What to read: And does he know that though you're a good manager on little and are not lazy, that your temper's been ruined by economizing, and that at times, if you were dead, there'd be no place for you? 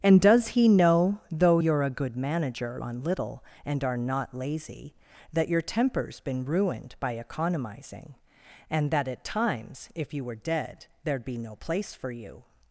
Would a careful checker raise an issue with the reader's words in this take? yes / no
yes